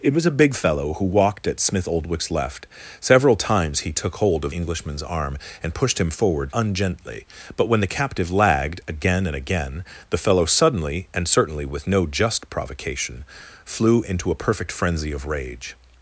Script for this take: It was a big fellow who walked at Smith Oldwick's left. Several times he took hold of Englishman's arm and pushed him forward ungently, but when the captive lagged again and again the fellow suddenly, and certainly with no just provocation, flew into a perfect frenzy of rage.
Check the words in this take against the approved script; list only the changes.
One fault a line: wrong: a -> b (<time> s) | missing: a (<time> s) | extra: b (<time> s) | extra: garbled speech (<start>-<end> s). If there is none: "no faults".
no faults